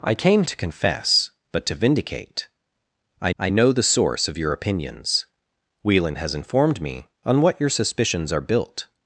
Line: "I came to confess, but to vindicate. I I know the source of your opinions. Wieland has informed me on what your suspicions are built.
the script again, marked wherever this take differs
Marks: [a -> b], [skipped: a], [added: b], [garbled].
"I came to confess, but to vindicate. I I know the source of your opinions. Wieland has informed me on what your suspicions are built.